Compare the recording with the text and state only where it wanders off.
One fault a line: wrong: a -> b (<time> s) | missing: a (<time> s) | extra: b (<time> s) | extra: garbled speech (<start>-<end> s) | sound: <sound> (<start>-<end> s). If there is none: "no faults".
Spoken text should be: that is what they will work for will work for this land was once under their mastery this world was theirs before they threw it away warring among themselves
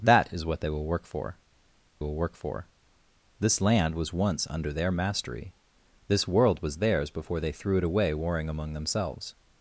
no faults